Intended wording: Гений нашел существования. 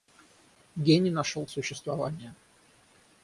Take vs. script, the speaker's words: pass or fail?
pass